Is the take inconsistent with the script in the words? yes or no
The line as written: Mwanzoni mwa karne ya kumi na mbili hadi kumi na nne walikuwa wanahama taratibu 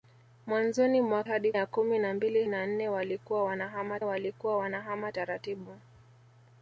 yes